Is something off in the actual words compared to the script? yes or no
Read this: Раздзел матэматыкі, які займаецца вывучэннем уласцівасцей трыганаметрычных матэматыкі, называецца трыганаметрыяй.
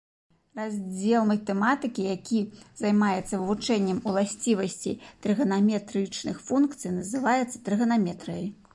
yes